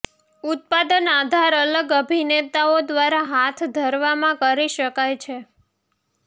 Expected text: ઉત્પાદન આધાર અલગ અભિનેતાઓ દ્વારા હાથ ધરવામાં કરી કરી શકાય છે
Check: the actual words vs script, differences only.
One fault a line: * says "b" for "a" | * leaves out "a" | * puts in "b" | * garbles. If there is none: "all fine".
* leaves out "કરી"